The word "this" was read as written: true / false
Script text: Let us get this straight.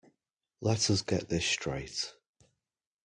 true